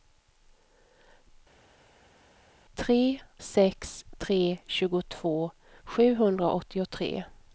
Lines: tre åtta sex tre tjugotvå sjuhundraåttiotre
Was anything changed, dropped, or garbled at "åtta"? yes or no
yes